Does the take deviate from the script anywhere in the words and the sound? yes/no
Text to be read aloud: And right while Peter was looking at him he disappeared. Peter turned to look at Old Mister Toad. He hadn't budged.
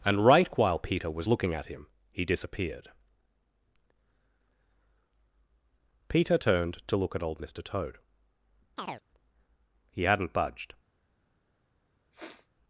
yes